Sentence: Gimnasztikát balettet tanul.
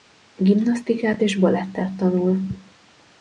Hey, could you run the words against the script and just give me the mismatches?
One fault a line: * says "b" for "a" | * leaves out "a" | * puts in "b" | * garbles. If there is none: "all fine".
* puts in "és"